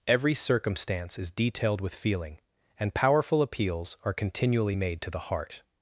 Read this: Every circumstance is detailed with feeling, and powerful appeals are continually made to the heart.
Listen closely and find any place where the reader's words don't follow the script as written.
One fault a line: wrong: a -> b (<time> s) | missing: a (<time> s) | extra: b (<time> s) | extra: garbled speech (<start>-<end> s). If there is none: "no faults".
no faults